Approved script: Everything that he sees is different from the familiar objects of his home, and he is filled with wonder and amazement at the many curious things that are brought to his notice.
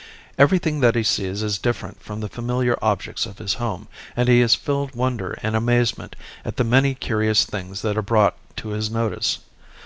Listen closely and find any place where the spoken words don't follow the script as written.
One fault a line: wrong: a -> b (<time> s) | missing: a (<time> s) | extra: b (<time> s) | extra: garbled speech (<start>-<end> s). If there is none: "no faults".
missing: with (5.0 s)